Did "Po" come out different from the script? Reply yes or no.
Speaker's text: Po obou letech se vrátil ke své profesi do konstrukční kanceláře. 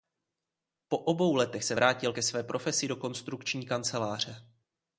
no